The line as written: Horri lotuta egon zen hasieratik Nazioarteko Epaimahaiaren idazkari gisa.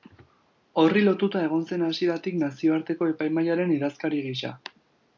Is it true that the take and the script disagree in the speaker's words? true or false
false